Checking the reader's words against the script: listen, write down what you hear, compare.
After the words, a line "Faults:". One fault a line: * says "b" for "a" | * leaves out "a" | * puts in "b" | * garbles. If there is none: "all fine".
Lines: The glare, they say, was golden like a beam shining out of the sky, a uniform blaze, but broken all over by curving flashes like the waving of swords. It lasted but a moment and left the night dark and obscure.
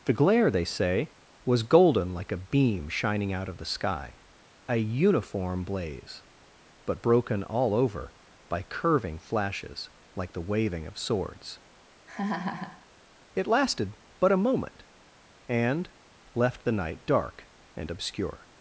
The glare, they say, was golden like a beam shining out of the sky, a uniform blaze, but broken all over by curving flashes like the waving of swords. It lasted but a moment and left the night dark and obscure.
Faults:
all fine